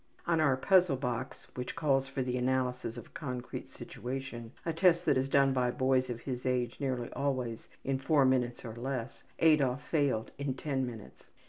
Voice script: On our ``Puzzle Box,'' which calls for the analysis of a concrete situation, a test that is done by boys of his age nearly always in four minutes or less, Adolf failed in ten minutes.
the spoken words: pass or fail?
pass